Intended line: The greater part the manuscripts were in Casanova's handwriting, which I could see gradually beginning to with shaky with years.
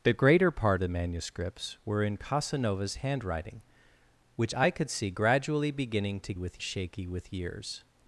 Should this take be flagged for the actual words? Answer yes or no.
no